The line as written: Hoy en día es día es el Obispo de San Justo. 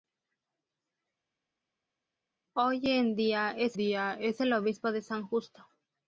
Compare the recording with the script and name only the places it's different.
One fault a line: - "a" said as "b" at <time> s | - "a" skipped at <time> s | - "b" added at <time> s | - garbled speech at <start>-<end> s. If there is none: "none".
none